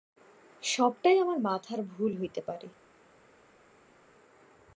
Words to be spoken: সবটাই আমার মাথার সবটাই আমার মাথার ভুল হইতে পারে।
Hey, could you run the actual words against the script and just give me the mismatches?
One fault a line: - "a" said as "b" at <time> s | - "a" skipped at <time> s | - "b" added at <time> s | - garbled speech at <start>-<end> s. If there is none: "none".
- "সবটাই আমার মাথার" skipped at 1.8 s